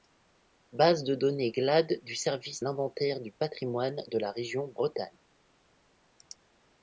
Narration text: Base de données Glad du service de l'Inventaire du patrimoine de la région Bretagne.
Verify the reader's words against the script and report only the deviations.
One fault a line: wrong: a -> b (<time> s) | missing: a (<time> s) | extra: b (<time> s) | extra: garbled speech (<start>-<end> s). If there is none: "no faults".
missing: de (2.6 s)